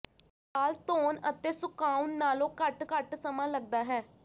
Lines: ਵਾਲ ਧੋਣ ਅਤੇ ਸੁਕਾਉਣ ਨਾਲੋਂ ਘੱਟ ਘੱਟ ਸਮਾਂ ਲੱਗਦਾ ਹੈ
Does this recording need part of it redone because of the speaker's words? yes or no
no